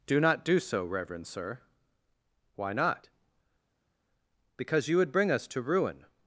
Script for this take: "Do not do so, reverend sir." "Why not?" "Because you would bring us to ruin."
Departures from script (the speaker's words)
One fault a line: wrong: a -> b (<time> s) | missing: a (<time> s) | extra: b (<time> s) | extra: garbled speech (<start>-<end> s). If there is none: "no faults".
no faults